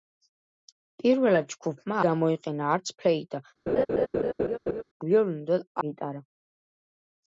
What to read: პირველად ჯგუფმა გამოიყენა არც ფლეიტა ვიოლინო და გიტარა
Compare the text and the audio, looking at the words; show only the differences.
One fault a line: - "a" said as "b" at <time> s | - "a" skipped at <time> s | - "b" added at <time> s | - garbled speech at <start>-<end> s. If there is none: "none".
none